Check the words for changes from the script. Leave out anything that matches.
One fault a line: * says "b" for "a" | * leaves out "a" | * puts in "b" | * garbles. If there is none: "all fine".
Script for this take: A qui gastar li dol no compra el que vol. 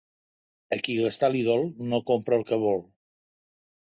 all fine